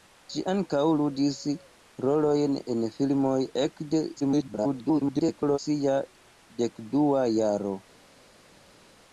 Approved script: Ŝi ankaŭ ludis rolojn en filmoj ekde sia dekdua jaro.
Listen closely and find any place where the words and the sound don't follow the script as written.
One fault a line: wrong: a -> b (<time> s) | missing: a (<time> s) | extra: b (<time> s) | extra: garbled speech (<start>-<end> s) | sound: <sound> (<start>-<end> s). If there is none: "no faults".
extra: garbled speech (4.2-5.6 s)